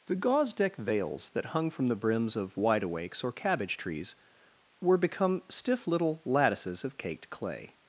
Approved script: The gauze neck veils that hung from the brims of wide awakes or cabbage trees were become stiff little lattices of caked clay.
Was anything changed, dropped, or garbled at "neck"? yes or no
yes